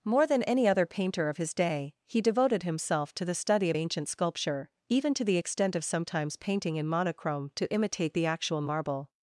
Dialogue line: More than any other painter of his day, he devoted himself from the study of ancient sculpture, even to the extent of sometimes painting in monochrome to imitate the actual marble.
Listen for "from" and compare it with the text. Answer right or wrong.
wrong